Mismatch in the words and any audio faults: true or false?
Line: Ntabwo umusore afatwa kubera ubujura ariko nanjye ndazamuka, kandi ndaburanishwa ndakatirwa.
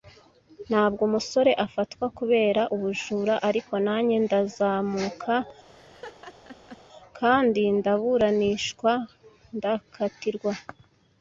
true